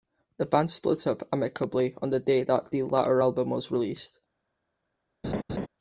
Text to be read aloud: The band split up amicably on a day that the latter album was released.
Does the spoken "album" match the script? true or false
true